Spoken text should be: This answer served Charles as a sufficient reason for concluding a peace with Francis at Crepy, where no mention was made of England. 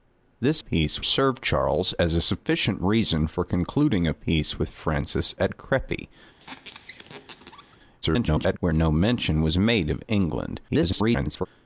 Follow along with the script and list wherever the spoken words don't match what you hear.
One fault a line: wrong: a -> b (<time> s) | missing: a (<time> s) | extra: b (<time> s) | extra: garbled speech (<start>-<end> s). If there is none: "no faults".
wrong: answer -> peace (0.6 s)
extra: garbled speech (8.0-8.6 s)
extra: garbled speech (10.7-11.5 s)